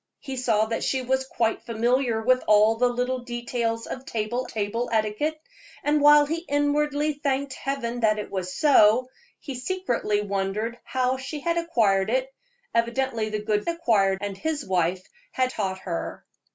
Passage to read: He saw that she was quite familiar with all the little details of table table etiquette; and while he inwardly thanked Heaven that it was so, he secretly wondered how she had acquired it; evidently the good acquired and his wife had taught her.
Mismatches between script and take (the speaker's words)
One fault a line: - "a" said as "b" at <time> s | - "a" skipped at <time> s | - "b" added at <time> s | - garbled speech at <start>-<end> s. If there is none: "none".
none